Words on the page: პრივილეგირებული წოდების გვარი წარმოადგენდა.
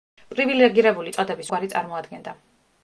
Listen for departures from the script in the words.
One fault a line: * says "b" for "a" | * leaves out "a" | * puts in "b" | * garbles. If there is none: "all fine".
all fine